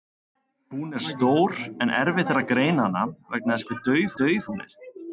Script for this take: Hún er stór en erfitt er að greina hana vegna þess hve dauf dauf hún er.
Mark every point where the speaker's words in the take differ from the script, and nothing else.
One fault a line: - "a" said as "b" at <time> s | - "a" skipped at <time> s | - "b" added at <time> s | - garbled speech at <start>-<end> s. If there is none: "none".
none